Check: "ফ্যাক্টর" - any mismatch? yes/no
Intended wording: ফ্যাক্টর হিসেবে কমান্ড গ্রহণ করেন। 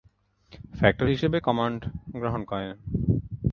no